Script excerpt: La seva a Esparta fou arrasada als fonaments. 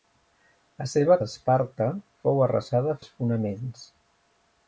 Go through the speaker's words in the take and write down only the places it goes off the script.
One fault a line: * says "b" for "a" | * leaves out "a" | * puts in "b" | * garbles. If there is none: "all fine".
all fine